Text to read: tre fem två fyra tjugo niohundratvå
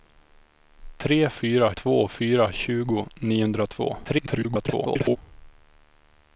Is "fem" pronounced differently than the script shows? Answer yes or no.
yes